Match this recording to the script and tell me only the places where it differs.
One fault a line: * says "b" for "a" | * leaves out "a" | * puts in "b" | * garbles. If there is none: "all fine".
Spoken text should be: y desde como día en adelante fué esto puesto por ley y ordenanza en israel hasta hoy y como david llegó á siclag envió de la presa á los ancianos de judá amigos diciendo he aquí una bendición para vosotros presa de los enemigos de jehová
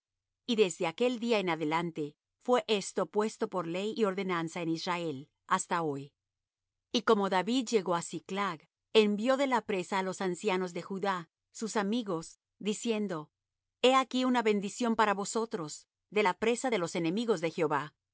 * says "aquel" for "como"
* puts in "sus"
* puts in "de la"